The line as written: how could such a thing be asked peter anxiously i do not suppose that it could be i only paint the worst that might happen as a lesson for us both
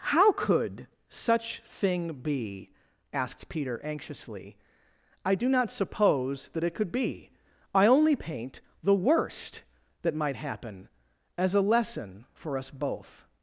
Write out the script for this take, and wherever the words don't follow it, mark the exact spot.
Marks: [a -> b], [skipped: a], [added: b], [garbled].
how could such [skipped: a] thing be asked peter anxiously i do not suppose that it could be i only paint the worst that might happen as a lesson for us both